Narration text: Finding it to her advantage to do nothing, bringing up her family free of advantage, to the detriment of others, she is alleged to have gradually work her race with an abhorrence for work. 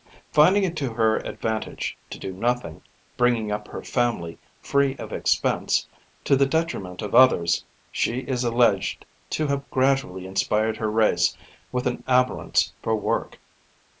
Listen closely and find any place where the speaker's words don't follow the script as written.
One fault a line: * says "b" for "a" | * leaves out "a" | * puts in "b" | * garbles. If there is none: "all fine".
* says "expense" for "advantage"
* says "inspired" for "work"